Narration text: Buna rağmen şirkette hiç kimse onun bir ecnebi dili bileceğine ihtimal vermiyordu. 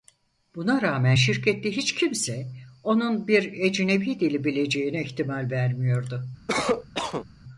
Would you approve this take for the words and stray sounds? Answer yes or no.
no